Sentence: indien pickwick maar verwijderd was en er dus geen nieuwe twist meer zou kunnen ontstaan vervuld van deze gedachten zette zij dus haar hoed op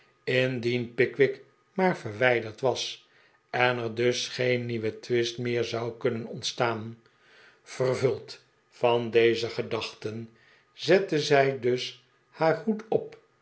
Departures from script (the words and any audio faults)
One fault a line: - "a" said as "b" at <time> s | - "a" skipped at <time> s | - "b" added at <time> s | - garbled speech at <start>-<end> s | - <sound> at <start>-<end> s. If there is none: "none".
none